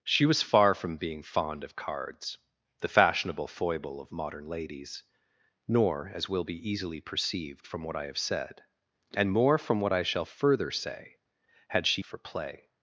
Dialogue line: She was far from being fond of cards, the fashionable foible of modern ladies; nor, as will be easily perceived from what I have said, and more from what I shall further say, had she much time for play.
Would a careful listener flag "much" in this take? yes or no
yes